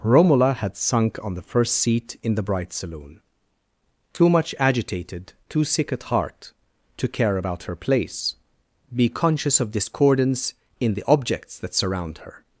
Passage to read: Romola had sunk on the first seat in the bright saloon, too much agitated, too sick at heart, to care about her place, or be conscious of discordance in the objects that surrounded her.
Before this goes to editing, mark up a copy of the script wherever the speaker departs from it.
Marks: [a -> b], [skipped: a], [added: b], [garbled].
Romola had sunk on the first seat in the bright saloon, too much agitated, too sick at heart, to care about her place, [skipped: or] be conscious of discordance in the objects that [surrounded -> surround] her.